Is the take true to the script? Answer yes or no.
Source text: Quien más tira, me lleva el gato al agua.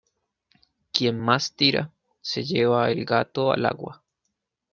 no